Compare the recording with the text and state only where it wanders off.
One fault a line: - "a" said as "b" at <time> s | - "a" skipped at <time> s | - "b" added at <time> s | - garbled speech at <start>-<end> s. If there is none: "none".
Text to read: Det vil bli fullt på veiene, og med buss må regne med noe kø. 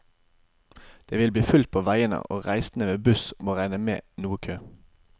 - "reisende" added at 2.5 s